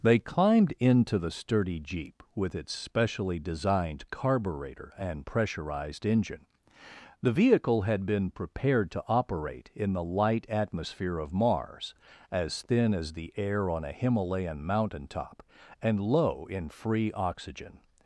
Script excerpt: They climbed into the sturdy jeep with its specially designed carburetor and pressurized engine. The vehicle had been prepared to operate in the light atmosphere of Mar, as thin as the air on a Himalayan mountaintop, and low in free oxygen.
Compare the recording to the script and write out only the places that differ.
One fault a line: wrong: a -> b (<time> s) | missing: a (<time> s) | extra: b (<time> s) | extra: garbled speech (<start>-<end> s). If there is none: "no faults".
wrong: Mar -> Mars (11.3 s)